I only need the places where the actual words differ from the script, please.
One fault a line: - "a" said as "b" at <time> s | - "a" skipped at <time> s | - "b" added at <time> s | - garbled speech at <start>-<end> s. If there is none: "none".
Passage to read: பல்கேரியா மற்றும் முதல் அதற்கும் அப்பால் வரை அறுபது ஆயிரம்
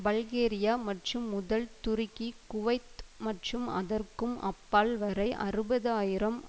- "துருக்கி குவைத் மற்றும்" added at 1.8 s